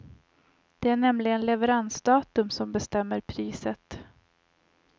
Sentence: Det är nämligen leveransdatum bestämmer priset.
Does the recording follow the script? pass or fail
fail